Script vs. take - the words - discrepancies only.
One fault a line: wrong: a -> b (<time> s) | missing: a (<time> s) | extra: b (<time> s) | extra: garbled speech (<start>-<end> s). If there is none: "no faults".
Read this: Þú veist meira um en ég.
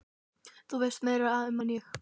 no faults